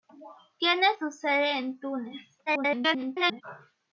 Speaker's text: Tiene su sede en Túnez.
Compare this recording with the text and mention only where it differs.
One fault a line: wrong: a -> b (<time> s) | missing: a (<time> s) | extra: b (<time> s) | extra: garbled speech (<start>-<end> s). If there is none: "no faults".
extra: garbled speech (2.5-3.4 s)